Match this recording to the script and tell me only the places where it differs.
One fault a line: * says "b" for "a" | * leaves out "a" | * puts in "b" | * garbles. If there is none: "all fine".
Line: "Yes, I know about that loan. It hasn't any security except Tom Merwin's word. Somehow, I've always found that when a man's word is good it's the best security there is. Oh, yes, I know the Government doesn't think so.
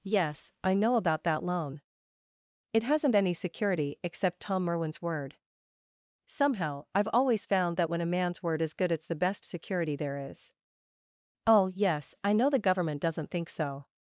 all fine